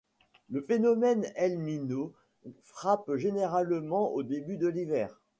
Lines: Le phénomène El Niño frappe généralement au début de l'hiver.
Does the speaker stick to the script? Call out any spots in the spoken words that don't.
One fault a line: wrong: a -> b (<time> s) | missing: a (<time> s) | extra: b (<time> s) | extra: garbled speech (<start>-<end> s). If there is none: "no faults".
no faults